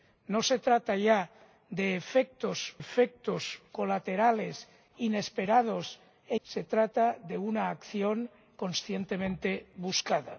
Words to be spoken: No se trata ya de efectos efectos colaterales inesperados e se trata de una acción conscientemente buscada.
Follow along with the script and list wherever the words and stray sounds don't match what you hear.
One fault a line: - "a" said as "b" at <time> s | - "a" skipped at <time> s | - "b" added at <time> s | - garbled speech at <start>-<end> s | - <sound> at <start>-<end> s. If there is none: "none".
none